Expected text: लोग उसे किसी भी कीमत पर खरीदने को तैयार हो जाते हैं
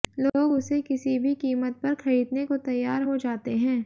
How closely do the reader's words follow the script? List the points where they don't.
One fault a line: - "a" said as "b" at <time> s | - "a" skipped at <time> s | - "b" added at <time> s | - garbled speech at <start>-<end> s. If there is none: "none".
none